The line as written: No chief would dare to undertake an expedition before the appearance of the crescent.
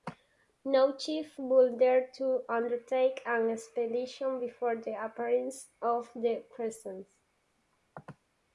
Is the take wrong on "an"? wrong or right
right